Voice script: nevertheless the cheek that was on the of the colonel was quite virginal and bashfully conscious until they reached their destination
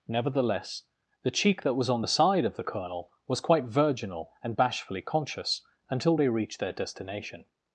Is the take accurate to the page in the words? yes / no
no